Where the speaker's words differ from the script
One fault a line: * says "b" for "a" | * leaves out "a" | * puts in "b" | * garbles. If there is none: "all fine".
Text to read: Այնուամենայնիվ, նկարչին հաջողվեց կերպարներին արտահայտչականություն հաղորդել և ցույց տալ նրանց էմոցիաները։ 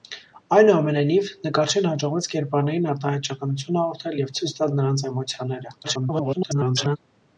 * garbles